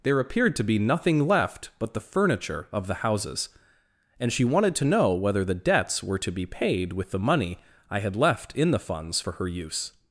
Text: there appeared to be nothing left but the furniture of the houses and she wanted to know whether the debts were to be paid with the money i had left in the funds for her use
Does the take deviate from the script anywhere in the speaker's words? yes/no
no